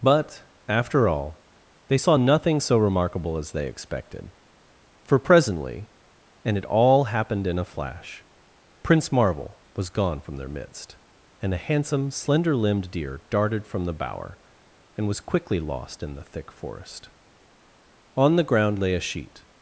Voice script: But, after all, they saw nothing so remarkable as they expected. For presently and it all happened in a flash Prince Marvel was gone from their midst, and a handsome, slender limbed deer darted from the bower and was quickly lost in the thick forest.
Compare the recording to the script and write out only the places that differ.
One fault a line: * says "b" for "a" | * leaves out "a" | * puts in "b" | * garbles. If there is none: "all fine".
* puts in "On the ground lay a sheet"